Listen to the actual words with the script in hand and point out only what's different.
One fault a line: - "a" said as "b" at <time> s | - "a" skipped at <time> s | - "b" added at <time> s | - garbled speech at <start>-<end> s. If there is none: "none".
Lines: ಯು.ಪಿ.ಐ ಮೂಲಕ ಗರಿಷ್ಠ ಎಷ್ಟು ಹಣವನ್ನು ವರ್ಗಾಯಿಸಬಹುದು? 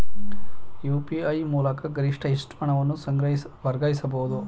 none